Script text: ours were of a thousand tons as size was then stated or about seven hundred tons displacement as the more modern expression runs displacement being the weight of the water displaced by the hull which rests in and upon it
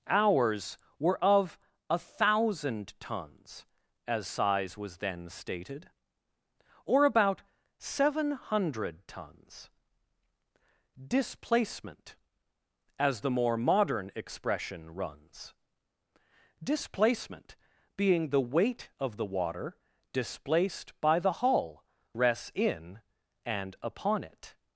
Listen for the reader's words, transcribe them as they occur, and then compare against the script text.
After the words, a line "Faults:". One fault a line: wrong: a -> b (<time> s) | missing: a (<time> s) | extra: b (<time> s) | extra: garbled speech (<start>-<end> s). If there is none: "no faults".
ours were of a thousand tons as size was then stated or about seven hundred tons displacement as the more modern expression runs displacement being the weight of the water displaced by the hull rests in and upon it
Faults:
missing: which (21.8 s)